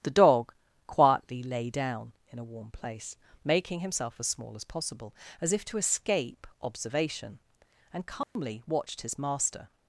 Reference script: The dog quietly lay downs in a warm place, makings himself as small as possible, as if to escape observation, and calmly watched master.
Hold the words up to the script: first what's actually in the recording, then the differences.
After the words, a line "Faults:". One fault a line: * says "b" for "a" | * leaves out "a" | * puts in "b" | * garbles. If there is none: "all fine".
The dog quietly lay down in a warm place, making himself as small as possible, as if to escape observation, and calmly watched his master.
Faults:
* says "down" for "downs"
* says "making" for "makings"
* puts in "his"